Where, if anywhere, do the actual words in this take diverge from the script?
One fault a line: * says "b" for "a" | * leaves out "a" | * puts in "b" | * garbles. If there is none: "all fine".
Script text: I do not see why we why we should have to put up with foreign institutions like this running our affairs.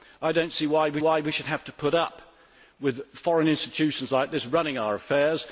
all fine